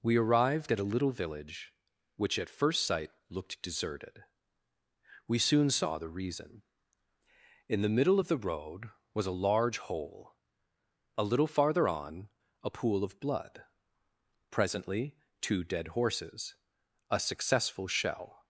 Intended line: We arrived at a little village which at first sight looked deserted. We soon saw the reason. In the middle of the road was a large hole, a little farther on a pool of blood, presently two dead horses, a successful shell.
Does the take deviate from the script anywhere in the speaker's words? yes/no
no